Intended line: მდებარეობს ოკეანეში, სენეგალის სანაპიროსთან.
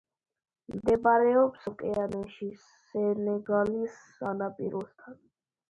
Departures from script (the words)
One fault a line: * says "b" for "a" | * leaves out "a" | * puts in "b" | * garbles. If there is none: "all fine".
all fine